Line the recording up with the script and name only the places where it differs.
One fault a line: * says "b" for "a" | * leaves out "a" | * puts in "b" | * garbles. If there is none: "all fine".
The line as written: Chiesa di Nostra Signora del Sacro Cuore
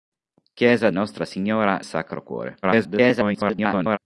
* leaves out "di"
* leaves out "del"
* garbles